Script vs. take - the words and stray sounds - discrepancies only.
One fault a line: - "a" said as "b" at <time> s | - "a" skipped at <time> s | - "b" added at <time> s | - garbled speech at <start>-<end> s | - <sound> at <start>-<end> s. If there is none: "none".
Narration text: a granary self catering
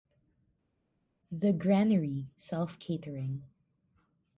- "a" said as "the" at 1.3 s